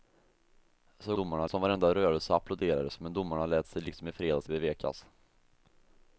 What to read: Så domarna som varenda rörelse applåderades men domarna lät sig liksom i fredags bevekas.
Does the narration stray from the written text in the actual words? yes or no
no